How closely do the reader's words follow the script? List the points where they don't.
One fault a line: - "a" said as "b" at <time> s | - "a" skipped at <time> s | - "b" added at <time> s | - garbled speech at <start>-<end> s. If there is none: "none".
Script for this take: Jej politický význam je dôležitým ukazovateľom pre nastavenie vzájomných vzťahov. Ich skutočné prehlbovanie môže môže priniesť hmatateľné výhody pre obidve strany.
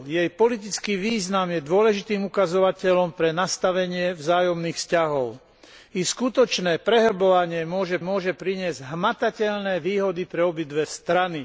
none